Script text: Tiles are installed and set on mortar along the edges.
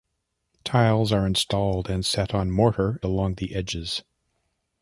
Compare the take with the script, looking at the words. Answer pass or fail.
pass